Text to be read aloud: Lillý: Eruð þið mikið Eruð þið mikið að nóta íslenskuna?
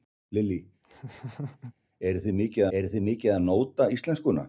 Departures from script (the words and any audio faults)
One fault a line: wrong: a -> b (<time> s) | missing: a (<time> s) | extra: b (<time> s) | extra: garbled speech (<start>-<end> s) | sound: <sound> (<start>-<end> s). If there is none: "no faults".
sound: laugh (0.8-1.7 s)